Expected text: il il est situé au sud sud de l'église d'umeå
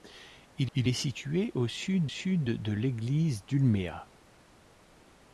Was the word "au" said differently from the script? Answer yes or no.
no